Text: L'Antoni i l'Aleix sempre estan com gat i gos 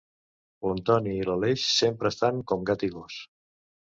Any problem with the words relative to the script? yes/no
no